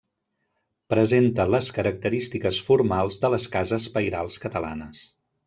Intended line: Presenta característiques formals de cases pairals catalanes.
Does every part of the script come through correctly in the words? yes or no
no